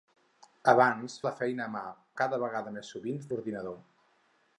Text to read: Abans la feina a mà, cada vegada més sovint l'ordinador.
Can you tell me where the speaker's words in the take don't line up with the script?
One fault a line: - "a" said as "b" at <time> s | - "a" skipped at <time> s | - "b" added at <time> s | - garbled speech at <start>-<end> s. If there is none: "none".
none